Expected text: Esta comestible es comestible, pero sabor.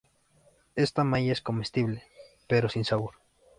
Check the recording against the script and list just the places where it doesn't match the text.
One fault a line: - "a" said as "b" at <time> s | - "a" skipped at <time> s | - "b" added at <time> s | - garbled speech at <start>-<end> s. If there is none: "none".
- "comestible" said as "malla" at 1.0 s
- "sin" added at 2.7 s